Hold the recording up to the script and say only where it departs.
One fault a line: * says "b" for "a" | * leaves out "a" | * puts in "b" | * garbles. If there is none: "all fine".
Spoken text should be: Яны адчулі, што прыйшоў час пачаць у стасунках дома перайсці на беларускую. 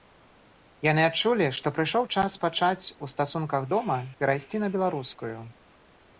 all fine